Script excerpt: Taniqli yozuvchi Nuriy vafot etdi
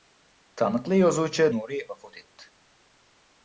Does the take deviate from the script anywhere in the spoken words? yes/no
no